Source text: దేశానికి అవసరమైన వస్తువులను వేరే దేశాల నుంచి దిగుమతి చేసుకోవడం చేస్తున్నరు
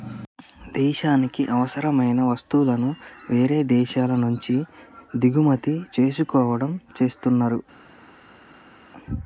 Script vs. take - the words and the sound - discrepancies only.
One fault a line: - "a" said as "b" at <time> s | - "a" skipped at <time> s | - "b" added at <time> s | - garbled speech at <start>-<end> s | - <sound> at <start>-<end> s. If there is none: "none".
none